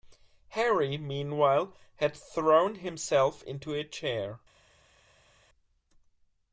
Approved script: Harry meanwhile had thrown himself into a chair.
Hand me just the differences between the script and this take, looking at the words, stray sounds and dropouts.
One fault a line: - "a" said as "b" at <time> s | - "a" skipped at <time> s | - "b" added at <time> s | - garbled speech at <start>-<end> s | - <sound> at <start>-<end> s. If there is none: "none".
none